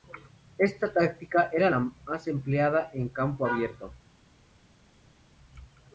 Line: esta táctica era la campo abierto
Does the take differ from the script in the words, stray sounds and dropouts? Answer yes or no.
yes